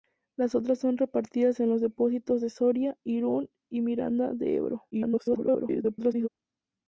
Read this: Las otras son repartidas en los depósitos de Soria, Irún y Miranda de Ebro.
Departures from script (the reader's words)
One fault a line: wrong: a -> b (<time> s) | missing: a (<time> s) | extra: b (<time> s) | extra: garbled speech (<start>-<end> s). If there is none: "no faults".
extra: garbled speech (4.9-6.3 s)